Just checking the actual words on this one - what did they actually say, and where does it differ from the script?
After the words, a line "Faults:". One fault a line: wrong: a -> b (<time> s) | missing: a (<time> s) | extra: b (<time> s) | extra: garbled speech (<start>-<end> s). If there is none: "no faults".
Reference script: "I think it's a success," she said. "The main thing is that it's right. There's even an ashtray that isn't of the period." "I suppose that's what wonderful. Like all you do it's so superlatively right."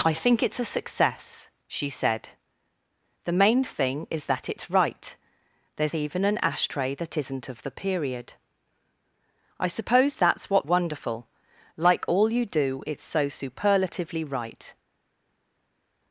"I think it's a success," she said. "The main thing is that it's right. There's even an ashtray that isn't of the period." "I suppose that's what wonderful. Like all you do it's so superlatively right."
Faults:
no faults